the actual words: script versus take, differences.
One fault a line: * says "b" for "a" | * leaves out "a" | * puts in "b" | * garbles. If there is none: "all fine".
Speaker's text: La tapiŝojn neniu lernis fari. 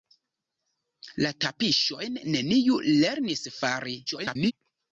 * garbles